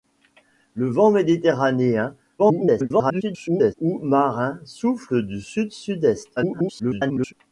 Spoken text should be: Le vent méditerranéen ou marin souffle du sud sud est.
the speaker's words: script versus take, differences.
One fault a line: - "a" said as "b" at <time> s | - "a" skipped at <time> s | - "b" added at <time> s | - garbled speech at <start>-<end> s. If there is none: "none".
- garbled speech at 2.4-3.7 s
- garbled speech at 6.4-7.3 s